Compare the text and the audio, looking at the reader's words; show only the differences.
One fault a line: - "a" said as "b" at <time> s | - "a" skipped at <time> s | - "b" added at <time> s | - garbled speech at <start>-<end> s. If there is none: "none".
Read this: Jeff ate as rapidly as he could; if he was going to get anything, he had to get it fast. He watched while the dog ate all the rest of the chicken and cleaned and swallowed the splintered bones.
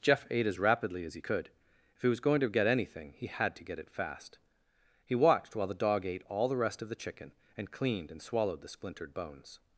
none